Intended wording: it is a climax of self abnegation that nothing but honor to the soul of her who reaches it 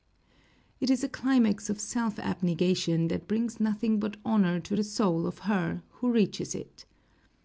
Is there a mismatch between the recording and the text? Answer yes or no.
yes